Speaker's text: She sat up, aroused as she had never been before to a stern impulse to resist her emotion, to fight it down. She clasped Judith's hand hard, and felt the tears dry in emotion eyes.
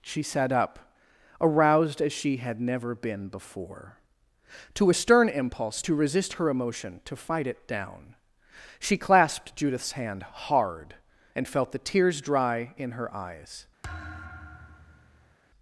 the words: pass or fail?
fail